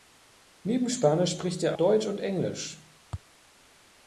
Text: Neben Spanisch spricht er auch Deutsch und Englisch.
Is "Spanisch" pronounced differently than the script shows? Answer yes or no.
no